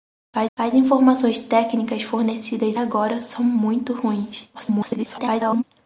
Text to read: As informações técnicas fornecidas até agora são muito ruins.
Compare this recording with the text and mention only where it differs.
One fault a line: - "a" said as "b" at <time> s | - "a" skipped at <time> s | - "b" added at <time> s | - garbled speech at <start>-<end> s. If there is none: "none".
- "as" added at 0.6 s
- "até" skipped at 2.8 s
- garbled speech at 4.5-5.6 s